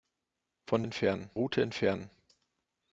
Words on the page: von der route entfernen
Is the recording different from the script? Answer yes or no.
yes